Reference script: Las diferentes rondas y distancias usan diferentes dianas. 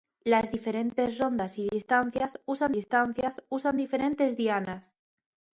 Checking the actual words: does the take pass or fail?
fail